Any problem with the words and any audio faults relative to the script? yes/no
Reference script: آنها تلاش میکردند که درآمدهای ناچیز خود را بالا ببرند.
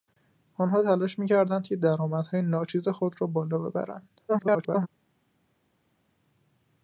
yes